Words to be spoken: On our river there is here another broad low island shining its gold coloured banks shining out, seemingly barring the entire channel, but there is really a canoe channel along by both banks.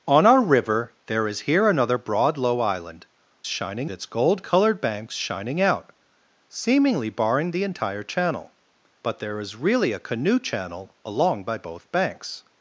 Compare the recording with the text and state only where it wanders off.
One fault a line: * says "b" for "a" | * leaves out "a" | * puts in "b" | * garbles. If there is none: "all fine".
all fine